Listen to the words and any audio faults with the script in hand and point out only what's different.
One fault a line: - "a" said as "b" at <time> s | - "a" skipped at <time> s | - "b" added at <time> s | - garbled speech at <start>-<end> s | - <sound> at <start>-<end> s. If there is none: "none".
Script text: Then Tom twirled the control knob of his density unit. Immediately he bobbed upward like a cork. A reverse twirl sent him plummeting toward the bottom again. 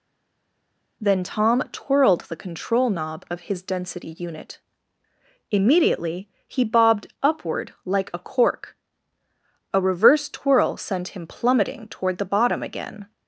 none